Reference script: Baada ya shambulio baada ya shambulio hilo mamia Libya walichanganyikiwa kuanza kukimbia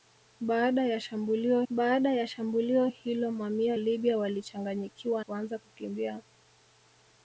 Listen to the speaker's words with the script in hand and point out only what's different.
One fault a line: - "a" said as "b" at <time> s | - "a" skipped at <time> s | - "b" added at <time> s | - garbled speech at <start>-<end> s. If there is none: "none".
none